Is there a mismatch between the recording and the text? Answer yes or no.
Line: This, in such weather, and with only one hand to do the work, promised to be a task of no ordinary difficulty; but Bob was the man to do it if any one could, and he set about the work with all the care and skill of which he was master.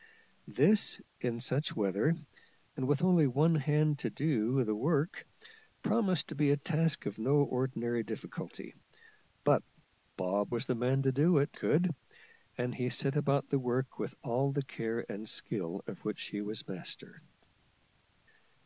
yes